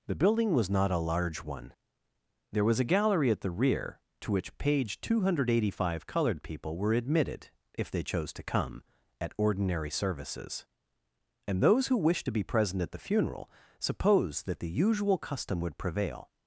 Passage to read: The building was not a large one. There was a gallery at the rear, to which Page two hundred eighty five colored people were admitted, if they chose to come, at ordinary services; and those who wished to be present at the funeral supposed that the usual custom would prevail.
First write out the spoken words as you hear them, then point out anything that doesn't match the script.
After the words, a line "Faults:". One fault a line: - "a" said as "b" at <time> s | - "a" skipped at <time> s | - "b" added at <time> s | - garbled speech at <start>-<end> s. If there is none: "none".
The building was not a large one. There was a gallery at the rear, to which Page two hundred eighty five colored people were admitted, if they chose to come, at ordinary services; and those who wished to be present at the funeral supposed that the usual custom would prevail.
Faults:
none